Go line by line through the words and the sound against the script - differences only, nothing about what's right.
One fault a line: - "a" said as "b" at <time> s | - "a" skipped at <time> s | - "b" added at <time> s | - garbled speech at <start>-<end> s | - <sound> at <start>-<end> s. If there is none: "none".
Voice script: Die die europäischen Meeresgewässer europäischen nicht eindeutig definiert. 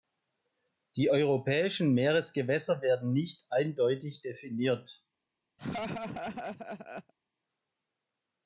- "die" skipped at 1.1 s
- "europäischen" said as "werden" at 2.8 s
- laugh at 5.6-7.1 s